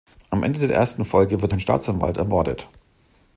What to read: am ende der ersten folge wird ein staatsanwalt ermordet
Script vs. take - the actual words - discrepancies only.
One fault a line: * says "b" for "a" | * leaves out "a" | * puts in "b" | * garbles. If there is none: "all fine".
all fine